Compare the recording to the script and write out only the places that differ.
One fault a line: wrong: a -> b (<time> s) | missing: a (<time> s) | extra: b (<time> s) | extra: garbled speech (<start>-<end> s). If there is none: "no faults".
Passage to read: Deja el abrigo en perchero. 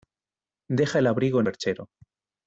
no faults